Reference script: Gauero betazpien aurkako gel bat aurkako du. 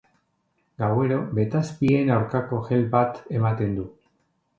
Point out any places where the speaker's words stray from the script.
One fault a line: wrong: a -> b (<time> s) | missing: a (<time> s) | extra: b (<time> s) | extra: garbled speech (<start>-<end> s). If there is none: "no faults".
wrong: aurkako -> ematen (3.4 s)